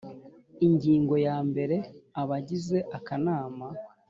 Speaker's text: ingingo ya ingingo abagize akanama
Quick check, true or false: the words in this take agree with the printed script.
false